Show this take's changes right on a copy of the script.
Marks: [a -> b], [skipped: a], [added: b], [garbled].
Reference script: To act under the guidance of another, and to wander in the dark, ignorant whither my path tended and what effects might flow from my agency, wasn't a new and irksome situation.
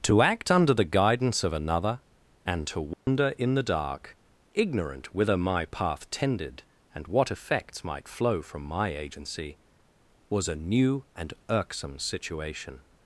To act under the guidance of another, and to wander in the dark, ignorant whither my path tended and what effects might flow from my agency, [wasn't -> was] a new and irksome situation.